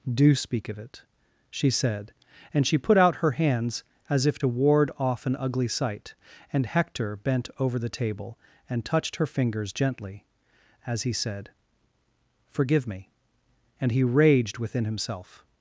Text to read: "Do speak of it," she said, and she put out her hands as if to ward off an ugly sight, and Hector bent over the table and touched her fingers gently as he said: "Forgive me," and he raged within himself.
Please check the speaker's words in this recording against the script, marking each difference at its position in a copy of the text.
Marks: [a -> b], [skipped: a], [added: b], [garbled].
"Do speak of it," she said, and she put out her hands as if to ward off an ugly sight, and Hector bent over the table and touched her fingers gently as he said: "Forgive me," and he raged within himself.